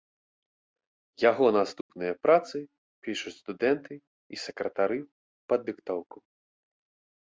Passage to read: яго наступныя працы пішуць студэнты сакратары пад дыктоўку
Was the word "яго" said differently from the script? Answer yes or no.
no